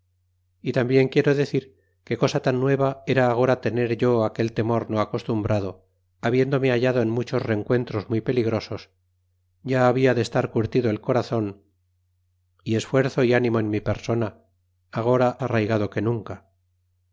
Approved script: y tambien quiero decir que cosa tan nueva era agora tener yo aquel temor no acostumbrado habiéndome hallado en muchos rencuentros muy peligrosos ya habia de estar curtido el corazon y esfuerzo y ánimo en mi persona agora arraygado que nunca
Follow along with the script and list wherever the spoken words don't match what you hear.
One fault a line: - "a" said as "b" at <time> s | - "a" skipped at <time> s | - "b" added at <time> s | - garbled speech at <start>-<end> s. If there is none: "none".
none